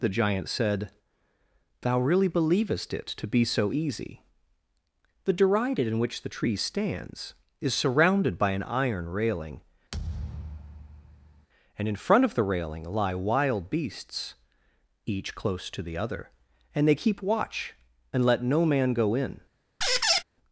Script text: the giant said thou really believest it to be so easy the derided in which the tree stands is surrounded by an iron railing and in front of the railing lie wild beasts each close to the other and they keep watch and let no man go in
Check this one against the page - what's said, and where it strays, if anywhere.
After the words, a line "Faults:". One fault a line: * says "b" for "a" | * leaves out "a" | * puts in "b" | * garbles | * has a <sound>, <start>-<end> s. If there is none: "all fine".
the giant said thou really believest it to be so easy the derided in which the tree stands is surrounded by an iron railing and in front of the railing lie wild beasts each close to the other and they keep watch and let no man go in
Faults:
* has a thud, 9.9-11.5 s
* has a squeak, 19.8-20.2 s